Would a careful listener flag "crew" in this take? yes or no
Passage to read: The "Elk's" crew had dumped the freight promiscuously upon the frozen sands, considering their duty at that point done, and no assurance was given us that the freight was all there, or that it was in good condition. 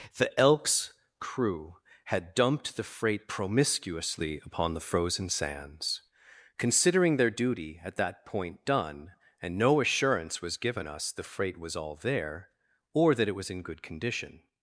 no